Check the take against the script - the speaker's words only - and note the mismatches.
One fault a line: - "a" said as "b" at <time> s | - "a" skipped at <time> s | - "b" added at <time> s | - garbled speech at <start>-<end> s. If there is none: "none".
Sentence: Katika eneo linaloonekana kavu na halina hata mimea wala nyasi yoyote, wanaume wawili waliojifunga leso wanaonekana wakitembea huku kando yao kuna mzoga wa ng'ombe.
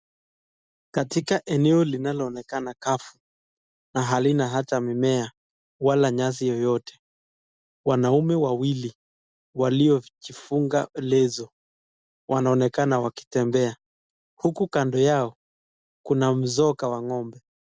none